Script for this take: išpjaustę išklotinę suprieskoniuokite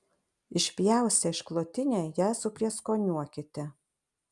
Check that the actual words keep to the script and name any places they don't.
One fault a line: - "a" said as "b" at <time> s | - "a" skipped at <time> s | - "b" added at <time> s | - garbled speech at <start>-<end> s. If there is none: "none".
- "ją" added at 2.2 s